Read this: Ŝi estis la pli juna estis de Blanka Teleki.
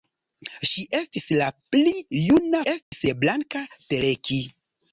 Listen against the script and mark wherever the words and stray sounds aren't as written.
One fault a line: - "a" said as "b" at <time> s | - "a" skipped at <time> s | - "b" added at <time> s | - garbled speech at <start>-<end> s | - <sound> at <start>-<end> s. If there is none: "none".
- dropout at 2.8-2.9 s